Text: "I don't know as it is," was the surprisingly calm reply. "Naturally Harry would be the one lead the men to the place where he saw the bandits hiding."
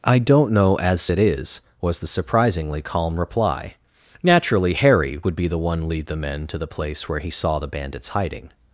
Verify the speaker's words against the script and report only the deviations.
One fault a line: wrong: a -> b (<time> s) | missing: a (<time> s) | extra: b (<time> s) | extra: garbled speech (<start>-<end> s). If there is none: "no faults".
no faults